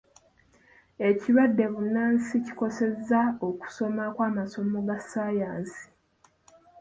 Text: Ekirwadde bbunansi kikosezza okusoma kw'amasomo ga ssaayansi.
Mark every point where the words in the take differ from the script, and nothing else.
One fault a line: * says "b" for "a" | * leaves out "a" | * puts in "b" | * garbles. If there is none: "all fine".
all fine